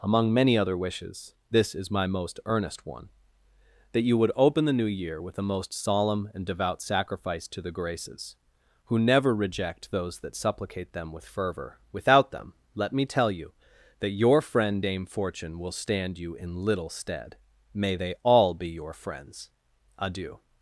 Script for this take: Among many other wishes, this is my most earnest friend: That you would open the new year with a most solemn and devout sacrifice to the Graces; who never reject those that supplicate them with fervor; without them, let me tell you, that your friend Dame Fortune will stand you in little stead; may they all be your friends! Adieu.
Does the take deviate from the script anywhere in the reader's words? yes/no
yes